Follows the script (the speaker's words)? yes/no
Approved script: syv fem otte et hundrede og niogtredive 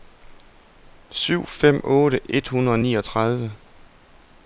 yes